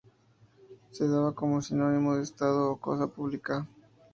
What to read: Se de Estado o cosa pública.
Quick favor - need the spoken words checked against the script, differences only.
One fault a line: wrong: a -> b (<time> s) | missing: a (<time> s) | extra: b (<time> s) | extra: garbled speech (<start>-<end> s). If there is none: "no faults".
extra: daba como sinónimo (1.1 s)